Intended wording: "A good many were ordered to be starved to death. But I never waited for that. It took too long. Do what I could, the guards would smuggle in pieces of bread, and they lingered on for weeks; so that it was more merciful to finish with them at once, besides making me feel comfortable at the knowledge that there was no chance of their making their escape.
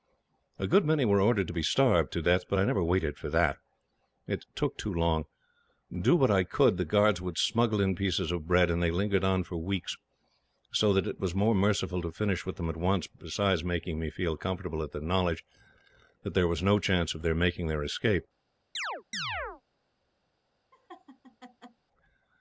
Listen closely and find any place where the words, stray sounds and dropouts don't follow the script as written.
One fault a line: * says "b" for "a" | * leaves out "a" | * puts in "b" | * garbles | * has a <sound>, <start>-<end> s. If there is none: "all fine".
* has a chirp, 18.7-19.6 s
* has a laugh, 20.7-21.8 s